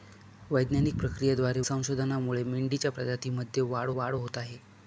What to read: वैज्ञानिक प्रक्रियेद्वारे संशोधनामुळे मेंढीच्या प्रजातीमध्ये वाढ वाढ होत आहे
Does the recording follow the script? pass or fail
pass